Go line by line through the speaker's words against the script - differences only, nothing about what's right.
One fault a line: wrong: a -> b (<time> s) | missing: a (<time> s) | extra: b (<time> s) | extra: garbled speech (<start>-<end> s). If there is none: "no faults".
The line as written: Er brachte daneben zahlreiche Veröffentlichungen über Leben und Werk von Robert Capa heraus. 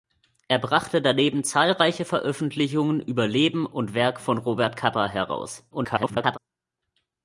extra: garbled speech (5.7-6.4 s)